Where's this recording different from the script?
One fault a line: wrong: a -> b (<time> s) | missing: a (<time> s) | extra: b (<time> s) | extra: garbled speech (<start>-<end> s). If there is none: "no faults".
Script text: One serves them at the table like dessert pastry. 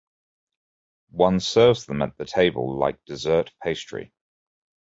no faults